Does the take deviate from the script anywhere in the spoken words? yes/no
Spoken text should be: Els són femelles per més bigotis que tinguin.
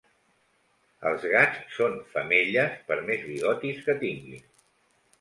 yes